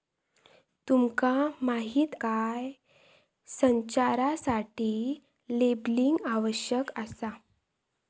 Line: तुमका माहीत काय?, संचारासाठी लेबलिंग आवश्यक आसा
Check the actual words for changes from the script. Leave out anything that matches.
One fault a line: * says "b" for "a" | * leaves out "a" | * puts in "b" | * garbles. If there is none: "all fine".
all fine